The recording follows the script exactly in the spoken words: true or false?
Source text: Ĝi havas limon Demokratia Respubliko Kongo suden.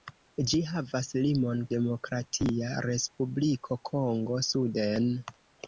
true